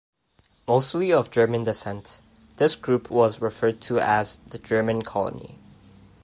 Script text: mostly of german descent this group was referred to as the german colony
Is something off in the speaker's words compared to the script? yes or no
no